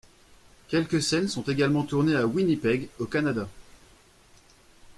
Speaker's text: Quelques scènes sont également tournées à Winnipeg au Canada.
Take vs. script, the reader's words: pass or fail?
pass